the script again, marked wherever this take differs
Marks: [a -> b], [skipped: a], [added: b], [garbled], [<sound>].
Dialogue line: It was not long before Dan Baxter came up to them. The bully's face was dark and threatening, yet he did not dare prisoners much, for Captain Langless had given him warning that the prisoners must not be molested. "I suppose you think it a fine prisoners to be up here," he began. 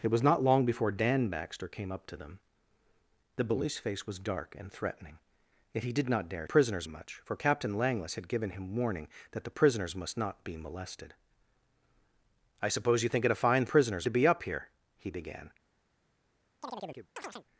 It was not long before Dan Baxter came up to them. The bully's face was dark and threatening, yet he did not dare prisoners much, for Captain Langless had given him warning that the prisoners must not be molested. "I suppose you think it a fine prisoners to be up here," he began. [chirp]